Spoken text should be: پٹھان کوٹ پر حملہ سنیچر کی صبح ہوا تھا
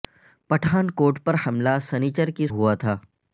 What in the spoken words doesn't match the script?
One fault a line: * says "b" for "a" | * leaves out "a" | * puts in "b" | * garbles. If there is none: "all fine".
* leaves out "صبح"